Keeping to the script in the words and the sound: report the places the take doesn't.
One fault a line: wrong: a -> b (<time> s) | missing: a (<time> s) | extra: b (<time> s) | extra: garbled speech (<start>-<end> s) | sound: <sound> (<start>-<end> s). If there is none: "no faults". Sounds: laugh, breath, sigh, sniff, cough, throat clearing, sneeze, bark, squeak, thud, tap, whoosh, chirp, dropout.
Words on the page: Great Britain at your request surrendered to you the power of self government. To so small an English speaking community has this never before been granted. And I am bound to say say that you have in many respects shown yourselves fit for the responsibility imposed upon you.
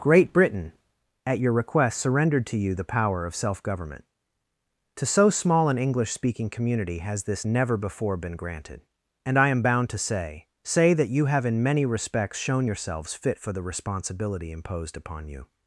no faults